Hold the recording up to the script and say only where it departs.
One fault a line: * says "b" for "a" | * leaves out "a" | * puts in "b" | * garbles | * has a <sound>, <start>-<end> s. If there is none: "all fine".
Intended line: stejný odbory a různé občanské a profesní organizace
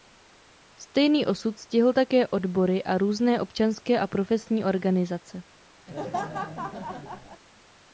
* puts in "osud stihl také"
* has a laugh, 5.9-7.4 s